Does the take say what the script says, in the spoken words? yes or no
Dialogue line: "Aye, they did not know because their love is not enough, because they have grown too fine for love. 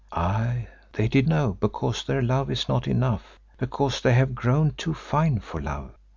no